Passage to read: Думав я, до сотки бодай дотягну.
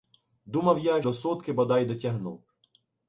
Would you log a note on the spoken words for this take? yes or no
no